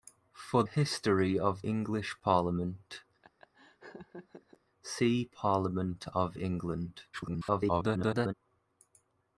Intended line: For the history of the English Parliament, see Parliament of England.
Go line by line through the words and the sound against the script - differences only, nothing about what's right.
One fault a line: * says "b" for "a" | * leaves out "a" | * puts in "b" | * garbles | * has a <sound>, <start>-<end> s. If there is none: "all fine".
* leaves out "the"
* leaves out "the"
* has a laugh, 3.2-4.6 s
* garbles